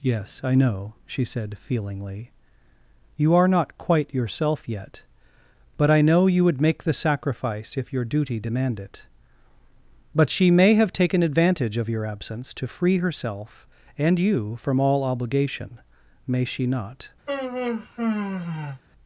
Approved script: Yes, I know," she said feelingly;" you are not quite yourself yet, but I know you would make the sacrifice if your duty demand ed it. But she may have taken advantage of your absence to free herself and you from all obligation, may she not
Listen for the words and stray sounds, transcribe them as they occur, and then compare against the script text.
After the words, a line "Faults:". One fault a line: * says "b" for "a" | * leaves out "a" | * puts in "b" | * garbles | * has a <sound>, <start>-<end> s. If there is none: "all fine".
Yes, I know," she said feelingly;" you are not quite yourself yet, but I know you would make the sacrifice if your duty demand it. But she may have taken advantage of your absence to free herself and you from all obligation, may she not
Faults:
* leaves out "ed"
* has a sigh, 17.3-18.8 s